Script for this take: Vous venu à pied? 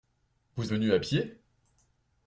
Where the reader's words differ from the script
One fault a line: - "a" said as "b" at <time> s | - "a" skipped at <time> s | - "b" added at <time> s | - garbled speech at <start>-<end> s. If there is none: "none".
none